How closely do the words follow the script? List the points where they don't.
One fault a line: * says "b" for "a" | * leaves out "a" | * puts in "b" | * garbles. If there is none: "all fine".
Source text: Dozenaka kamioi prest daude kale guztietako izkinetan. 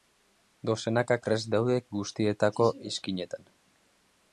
* leaves out "kamioi"
* leaves out "kale"